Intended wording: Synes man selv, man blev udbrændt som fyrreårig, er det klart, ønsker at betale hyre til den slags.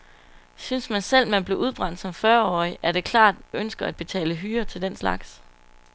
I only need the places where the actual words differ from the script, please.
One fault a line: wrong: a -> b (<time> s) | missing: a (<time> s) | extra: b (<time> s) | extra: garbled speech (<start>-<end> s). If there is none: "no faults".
no faults